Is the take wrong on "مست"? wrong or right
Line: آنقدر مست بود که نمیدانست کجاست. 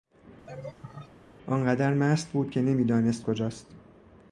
right